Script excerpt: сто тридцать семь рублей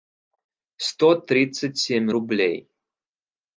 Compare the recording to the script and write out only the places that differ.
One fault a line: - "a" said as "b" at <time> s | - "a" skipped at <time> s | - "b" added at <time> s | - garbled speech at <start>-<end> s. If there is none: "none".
none